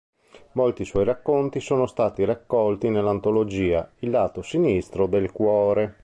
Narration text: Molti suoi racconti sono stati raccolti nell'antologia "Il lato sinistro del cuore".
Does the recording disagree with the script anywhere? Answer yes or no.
no